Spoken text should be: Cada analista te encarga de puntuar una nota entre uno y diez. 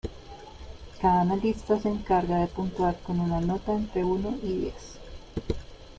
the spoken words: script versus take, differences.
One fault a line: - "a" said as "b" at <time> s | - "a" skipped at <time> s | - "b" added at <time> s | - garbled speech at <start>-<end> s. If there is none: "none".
- "te" said as "se" at 1.8 s
- "con" added at 3.0 s